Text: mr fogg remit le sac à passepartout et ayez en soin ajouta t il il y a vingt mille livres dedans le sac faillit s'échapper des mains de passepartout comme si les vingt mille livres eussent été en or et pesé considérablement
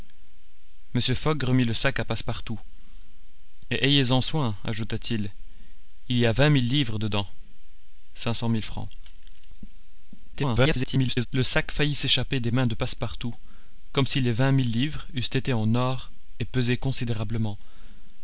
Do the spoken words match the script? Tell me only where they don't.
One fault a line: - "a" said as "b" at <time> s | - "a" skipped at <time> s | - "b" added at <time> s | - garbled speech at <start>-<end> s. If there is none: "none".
- garbled speech at 10.3-11.3 s